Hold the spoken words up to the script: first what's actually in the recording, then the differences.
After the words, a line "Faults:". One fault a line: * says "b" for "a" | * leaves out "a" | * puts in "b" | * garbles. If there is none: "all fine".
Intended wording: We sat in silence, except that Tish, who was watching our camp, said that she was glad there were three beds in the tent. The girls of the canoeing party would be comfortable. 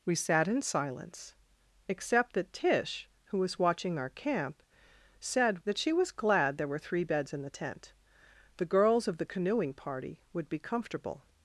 We sat in silence, except that Tish, who was watching our camp, said that she was glad there were three beds in the tent. The girls of the canoeing party would be comfortable.
Faults:
all fine